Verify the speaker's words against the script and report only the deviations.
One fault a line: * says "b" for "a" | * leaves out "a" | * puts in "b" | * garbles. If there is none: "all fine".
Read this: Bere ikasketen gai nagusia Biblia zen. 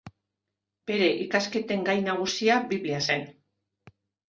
all fine